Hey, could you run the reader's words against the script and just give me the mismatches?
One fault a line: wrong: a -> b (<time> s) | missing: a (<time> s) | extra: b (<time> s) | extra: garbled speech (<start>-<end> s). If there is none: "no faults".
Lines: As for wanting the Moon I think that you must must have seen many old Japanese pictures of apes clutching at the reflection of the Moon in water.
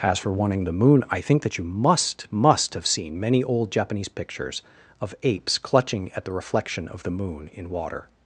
no faults